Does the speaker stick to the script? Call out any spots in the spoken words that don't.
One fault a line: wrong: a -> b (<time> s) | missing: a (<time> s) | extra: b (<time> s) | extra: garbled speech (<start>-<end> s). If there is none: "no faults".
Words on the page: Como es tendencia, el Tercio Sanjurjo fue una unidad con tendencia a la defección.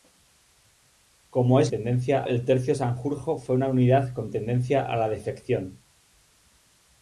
no faults